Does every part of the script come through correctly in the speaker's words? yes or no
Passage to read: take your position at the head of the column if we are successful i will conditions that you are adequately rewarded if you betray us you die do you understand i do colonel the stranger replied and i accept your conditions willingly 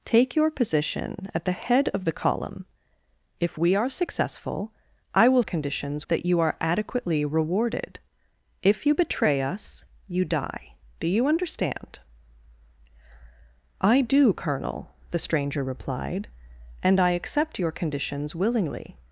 yes